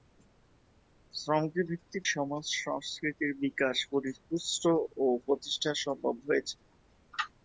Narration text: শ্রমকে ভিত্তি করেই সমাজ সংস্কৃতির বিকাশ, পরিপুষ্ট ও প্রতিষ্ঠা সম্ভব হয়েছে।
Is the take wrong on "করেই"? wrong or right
wrong